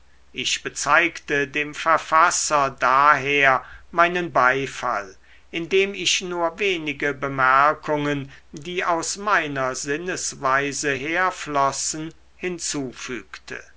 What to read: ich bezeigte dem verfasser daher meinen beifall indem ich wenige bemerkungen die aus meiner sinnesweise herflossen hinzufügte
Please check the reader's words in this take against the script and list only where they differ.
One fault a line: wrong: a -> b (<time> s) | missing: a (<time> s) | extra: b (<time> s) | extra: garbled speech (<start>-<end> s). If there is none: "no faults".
extra: nur (6.2 s)